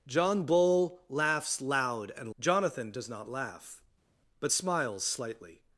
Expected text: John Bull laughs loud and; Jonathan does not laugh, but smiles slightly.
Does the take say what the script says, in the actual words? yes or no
yes